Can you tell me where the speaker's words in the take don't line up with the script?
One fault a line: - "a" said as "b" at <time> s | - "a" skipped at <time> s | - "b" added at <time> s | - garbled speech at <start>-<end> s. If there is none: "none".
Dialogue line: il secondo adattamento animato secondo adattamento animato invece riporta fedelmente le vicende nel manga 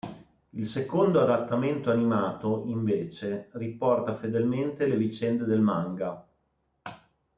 - "secondo adattamento animato" skipped at 2.6 s
- "nel" said as "del" at 5.4 s